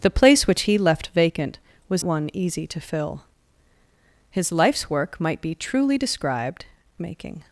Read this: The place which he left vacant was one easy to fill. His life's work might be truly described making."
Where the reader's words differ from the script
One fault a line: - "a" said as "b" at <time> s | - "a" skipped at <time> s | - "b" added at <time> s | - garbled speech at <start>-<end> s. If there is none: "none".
none